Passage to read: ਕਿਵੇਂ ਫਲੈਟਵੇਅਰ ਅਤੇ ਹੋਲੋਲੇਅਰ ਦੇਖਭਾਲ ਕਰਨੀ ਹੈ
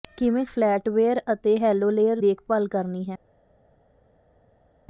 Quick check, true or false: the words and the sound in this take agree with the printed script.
true